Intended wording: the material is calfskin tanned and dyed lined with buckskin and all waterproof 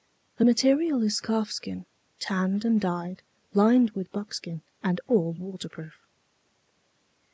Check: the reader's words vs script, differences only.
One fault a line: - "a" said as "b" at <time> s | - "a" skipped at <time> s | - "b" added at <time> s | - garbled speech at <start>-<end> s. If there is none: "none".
none